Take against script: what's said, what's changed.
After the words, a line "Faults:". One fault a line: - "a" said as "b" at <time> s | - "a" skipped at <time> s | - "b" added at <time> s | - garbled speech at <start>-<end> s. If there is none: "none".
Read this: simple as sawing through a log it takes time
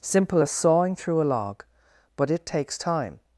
simple as sawing through a log but it takes time
Faults:
- "but" added at 2.1 s